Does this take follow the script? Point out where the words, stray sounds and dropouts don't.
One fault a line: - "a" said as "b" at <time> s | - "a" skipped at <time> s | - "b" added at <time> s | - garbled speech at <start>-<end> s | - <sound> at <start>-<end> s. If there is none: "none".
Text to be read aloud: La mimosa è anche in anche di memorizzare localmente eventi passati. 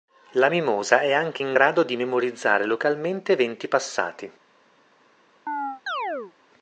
- "anche" said as "grado" at 1.5 s
- chirp at 5.5-6.3 s